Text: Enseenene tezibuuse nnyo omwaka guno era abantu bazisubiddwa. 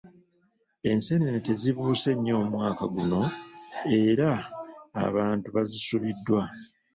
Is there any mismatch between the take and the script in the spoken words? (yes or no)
no